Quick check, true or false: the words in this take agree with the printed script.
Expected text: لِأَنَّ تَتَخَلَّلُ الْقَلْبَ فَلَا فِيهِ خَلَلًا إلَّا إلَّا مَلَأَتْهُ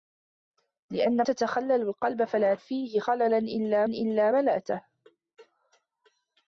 true